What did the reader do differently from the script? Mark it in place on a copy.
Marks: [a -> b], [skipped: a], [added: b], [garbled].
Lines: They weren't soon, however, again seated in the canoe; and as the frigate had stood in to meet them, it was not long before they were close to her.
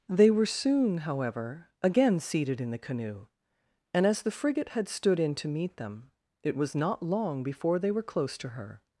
They [weren't -> were] soon, however, again seated in the canoe; and as the frigate had stood in to meet them, it was not long before they were close to her.